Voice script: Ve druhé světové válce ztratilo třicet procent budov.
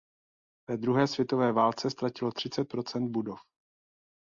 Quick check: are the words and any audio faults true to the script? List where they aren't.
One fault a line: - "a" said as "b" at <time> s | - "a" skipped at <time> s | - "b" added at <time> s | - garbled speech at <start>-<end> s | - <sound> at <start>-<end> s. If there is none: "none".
none